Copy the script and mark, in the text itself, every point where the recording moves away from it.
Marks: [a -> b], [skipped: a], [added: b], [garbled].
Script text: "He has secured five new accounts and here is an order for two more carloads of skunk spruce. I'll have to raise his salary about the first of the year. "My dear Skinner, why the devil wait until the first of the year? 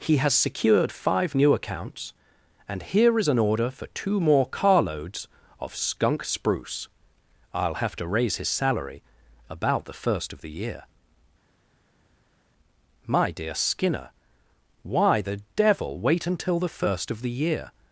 "He has secured five new accounts and here is an order for two more carloads of skunk spruce. I'll have to raise his salary about the first of the year. "My dear Skinner, why the devil wait until the first of the year?